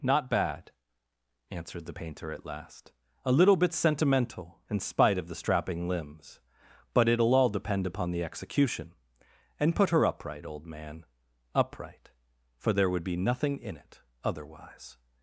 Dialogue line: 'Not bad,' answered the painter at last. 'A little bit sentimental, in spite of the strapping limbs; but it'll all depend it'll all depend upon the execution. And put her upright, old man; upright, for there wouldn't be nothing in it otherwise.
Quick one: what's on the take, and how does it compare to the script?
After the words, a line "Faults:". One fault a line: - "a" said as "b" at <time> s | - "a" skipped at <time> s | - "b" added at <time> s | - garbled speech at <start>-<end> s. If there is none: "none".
'Not bad,' answered the painter at last. 'A little bit sentimental, in spite of the strapping limbs; but it'll all depend upon the execution. And put her upright, old man; upright, for there would be nothing in it otherwise.
Faults:
- "it'll all depend" skipped at 7.8 s
- "wouldn't" said as "would" at 12.9 s